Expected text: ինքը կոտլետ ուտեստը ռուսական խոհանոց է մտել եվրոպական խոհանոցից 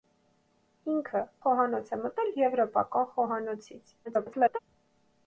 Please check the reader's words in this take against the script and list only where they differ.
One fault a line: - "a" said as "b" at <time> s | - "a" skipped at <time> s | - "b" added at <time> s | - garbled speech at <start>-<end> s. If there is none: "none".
- "կոտլետ ուտեստը ռուսական" skipped at 1.2 s
- garbled speech at 4.0-4.6 s